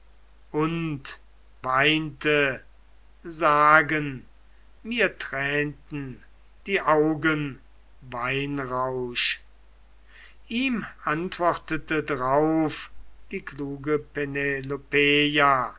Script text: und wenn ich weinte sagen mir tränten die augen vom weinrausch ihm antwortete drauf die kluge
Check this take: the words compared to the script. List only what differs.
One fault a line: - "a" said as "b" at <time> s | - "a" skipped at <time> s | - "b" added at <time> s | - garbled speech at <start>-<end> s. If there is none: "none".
- "wenn ich" skipped at 1.2 s
- "vom" skipped at 7.6 s